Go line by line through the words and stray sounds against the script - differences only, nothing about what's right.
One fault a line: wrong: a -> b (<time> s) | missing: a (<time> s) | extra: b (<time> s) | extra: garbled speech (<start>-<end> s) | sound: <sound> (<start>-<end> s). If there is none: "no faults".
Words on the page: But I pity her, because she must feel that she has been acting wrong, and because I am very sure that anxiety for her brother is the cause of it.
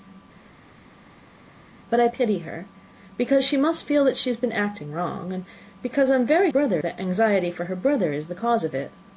wrong: sure -> brother (6.5 s)